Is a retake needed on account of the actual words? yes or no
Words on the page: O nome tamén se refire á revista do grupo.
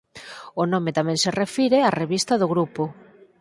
no